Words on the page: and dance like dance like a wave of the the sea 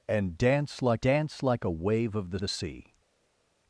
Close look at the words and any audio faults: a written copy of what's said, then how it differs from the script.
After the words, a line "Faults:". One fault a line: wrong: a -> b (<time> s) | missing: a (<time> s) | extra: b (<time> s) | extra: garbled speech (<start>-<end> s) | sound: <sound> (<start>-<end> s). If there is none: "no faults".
and dance like dance like a wave of the the sea
Faults:
no faults